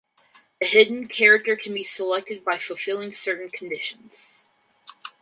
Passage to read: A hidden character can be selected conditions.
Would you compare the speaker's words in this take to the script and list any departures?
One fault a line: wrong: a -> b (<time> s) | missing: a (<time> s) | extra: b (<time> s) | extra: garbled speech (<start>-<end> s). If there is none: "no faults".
extra: by fulfilling certain (2.4 s)